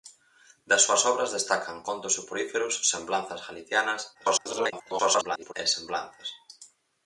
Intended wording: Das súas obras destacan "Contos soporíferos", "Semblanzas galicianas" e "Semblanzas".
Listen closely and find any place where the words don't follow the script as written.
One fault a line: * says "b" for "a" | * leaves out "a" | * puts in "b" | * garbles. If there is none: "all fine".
* garbles